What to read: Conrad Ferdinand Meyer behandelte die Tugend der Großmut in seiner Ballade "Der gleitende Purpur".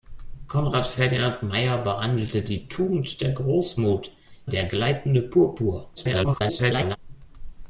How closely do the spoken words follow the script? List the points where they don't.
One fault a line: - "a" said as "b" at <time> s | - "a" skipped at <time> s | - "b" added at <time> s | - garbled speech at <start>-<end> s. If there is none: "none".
- "in seiner Ballade" skipped at 4.1 s
- garbled speech at 6.0-7.0 s